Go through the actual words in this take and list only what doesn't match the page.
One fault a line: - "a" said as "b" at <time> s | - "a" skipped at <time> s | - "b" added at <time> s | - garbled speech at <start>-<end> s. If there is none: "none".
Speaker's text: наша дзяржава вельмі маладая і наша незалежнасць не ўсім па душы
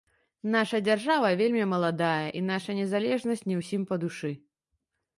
none